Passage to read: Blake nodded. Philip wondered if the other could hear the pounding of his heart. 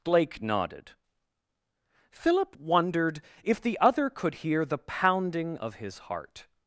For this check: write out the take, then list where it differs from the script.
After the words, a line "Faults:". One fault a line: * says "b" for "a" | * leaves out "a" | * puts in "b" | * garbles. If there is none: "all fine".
Blake nodded. Philip wondered if the other could hear the pounding of his heart.
Faults:
all fine